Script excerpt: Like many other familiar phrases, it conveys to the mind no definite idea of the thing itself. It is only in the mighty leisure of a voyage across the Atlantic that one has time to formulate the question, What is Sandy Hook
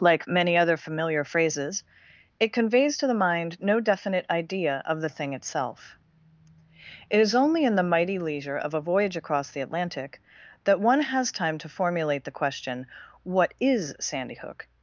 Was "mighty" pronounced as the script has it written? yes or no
yes